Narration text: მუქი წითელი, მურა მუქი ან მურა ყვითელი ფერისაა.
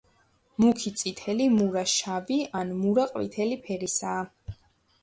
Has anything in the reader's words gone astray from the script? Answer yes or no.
yes